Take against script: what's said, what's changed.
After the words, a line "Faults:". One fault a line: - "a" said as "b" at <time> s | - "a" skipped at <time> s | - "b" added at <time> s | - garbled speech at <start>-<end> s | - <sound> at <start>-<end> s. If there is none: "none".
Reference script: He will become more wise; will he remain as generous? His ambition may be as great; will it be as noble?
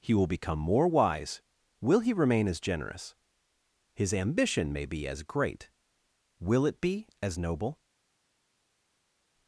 He will become more wise; will he remain as generous? His ambition may be as great; will it be as noble?
Faults:
none